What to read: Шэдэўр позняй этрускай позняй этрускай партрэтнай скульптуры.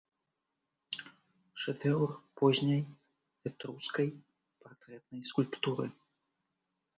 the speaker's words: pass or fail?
fail